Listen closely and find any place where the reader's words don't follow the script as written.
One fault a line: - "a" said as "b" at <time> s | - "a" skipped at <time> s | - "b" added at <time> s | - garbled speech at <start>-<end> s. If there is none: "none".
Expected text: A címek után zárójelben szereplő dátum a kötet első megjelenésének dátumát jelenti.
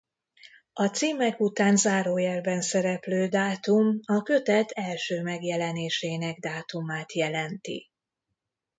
none